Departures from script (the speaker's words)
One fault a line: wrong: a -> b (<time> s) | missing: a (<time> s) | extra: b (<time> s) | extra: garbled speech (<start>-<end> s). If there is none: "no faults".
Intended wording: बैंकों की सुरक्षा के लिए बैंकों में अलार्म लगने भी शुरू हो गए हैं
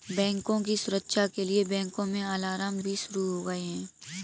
missing: लगने (2.8 s)